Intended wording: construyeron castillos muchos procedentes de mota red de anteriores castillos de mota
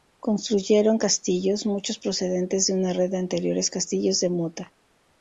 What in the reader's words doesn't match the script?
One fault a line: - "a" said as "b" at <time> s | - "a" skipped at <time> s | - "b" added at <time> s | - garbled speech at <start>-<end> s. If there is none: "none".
- "mota" said as "una" at 2.7 s